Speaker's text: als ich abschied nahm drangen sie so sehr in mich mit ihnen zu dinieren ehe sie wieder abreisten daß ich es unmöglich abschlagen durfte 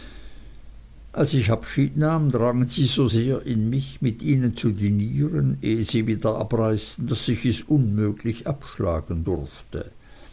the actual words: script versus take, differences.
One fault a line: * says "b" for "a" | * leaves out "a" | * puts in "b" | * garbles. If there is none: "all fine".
all fine